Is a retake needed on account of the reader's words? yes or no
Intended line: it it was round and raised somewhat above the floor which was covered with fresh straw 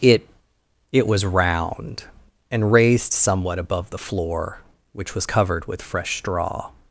no